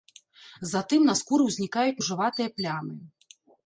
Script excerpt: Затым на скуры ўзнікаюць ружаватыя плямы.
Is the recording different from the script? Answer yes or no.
no